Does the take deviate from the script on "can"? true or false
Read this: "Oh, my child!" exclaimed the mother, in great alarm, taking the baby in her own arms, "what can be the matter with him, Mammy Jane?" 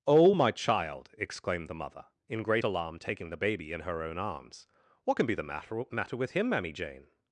false